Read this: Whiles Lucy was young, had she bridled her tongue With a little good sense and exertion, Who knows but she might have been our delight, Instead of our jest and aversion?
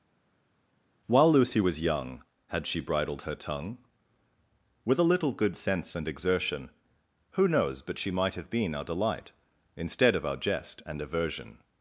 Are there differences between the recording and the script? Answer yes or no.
yes